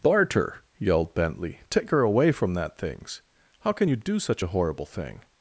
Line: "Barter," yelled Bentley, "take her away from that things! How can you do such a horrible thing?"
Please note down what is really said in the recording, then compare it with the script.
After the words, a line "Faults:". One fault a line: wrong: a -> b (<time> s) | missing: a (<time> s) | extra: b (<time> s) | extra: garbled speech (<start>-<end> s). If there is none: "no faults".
"Barter," yelled Bentley, "take her away from that things! How can you do such a horrible thing?"
Faults:
no faults